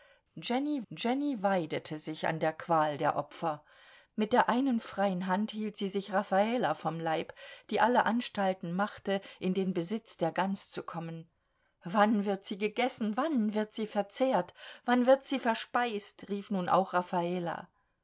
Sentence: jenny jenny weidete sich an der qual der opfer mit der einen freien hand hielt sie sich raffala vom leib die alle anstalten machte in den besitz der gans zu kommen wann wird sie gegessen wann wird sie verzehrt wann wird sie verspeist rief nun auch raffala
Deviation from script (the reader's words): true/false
false